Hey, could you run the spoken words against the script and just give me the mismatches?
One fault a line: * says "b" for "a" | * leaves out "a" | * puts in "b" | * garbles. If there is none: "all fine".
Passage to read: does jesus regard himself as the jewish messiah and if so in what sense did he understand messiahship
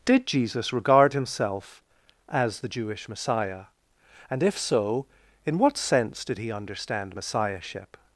* says "did" for "does"